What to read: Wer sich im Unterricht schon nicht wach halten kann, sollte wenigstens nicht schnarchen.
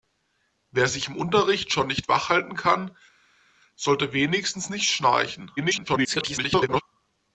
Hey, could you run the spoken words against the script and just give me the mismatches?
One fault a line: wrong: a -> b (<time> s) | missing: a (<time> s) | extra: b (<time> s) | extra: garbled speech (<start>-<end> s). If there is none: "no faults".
extra: garbled speech (5.6-6.8 s)